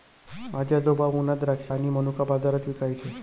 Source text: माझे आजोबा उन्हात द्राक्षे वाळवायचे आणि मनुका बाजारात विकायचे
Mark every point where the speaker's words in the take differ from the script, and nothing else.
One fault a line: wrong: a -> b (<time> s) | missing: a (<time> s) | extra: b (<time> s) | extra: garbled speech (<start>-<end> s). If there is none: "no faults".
missing: वाळवायचे (1.7 s)